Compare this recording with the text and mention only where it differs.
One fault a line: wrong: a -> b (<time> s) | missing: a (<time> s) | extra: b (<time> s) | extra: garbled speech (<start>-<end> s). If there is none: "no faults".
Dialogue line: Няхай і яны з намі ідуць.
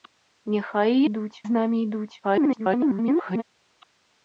wrong: яны -> ідуць (1.1 s)
extra: garbled speech (2.2-3.4 s)